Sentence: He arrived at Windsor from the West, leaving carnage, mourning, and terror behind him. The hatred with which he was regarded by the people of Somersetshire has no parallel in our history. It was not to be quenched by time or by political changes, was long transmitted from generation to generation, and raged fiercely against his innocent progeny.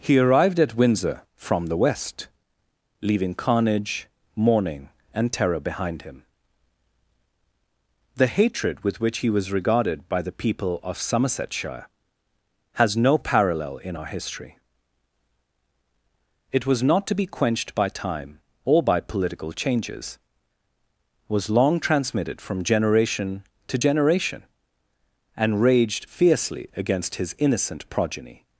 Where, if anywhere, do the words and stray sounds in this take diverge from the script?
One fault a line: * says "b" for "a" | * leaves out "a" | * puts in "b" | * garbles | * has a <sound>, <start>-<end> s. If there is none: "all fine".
all fine